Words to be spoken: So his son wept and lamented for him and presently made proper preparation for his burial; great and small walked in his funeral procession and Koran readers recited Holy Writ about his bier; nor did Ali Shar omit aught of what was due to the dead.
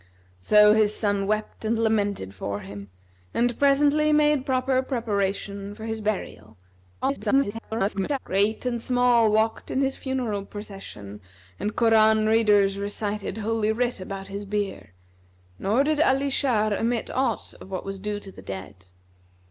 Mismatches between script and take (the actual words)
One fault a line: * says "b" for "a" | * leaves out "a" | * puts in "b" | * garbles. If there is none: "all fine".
* garbles